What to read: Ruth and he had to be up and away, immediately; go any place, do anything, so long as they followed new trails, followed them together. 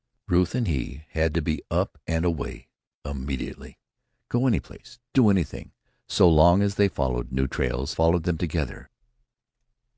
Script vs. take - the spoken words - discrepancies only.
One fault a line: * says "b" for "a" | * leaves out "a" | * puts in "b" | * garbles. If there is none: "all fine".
all fine